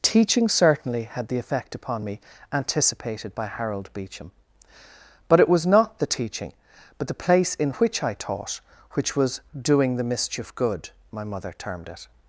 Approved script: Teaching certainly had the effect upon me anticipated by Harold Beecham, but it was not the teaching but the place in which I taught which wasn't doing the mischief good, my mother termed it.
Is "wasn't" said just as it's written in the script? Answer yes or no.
no